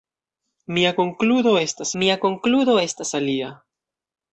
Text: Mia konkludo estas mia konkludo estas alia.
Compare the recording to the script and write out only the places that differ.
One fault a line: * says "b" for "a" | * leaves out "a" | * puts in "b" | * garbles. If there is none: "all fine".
all fine